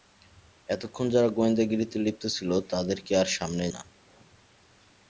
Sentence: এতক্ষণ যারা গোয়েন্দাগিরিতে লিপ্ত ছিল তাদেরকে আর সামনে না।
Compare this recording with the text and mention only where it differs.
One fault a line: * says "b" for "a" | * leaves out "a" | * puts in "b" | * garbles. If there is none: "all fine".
all fine